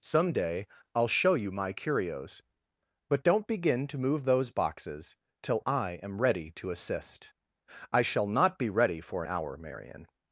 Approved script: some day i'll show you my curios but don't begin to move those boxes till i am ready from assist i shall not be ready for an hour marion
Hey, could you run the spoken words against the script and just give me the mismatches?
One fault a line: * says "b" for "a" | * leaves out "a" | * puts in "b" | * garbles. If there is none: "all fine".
* says "to" for "from"